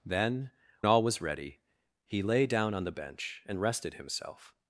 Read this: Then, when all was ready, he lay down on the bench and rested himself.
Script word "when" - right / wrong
wrong